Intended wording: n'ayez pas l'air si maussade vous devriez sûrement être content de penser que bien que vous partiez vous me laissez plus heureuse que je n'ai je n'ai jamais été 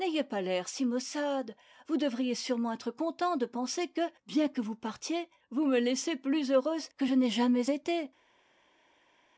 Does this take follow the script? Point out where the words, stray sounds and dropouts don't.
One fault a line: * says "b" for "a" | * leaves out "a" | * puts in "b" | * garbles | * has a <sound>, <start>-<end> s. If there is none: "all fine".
* leaves out "je n'ai"